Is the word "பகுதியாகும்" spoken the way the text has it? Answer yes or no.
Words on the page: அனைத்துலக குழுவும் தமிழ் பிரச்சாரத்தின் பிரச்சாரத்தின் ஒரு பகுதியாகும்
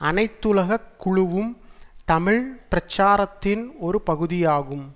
yes